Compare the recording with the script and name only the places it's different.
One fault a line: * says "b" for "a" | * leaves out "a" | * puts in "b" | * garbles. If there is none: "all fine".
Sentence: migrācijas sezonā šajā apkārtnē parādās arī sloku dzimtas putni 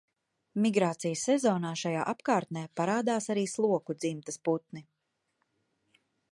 all fine